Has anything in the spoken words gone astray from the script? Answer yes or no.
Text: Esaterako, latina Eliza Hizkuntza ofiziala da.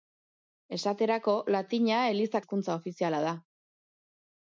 no